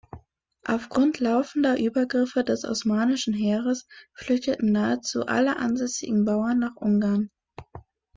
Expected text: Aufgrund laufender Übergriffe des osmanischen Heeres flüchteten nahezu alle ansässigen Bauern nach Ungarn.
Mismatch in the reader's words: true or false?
false